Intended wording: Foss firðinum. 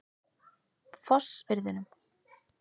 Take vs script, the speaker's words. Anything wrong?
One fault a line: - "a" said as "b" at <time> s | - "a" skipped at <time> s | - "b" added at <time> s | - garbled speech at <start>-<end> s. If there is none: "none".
none